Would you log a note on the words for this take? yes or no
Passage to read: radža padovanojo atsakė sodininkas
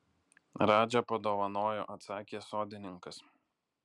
no